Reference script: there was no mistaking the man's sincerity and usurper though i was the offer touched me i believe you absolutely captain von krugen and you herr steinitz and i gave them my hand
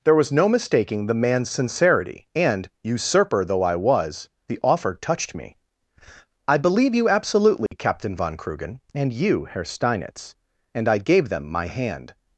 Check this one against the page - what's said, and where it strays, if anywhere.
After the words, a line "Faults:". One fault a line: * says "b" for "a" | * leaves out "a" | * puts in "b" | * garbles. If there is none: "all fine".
there was no mistaking the man's sincerity and usurper though i was the offer touched me i believe you absolutely captain von krugen and you herr steinitz and i gave them my hand
Faults:
all fine